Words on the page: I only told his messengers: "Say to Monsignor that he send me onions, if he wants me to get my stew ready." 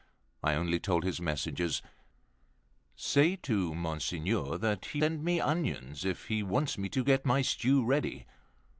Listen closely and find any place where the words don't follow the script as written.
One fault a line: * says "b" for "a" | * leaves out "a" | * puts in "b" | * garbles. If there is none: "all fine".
all fine